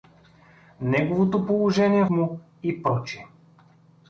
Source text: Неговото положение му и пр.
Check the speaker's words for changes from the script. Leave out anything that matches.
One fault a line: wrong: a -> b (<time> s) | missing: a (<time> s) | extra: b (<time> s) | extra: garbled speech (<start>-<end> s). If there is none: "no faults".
no faults